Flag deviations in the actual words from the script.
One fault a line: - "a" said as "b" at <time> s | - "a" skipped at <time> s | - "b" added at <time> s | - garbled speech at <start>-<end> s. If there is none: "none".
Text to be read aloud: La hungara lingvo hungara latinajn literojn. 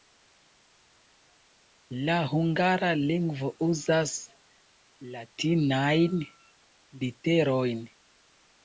- "hungara" said as "uzas" at 3.7 s